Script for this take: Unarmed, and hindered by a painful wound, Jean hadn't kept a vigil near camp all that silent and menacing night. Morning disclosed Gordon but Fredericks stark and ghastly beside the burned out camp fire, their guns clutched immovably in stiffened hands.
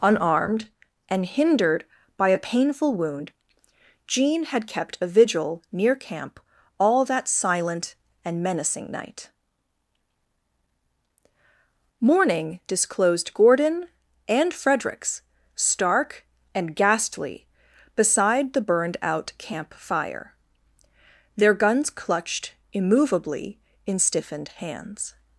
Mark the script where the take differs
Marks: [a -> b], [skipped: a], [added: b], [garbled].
Unarmed, and hindered by a painful wound, Jean [hadn't -> had] kept a vigil near camp all that silent and menacing night. Morning disclosed Gordon [but -> and] Fredericks stark and ghastly beside the burned out camp fire, their guns clutched immovably in stiffened hands.